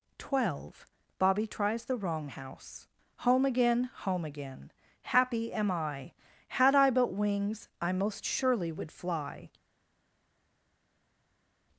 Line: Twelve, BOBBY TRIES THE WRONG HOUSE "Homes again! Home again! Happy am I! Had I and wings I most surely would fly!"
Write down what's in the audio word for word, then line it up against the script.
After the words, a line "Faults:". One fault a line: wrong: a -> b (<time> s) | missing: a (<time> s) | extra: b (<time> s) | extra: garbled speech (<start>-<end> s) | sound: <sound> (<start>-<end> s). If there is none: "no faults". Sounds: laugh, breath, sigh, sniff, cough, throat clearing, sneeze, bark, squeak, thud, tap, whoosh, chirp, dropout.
Twelve, BOBBY TRIES THE WRONG HOUSE "Home again! Home again! Happy am I! Had I but wings I most surely would fly!"
Faults:
wrong: Homes -> Home (3.2 s)
wrong: and -> but (6.9 s)